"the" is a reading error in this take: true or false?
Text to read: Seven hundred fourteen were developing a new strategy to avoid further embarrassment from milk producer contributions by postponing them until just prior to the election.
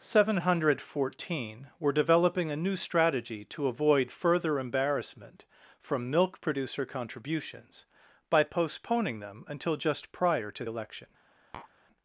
true